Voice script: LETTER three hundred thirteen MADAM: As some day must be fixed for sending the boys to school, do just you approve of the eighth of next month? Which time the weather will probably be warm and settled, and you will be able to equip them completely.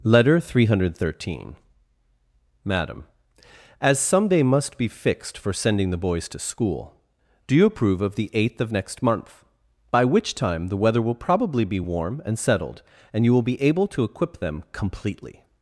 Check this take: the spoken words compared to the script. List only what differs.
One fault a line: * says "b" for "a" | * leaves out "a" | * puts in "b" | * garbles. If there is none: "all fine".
* leaves out "just"
* puts in "By"